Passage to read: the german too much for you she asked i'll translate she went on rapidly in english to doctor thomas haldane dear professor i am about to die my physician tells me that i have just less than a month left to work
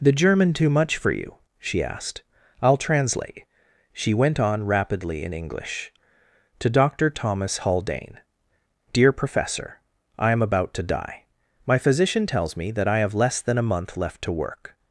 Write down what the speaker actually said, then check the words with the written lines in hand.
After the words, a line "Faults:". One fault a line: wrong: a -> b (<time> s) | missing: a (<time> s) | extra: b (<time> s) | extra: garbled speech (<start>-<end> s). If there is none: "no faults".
the german too much for you she asked i'll translate she went on rapidly in english to doctor thomas haldane dear professor i am about to die my physician tells me that i have less than a month left to work
Faults:
missing: just (13.1 s)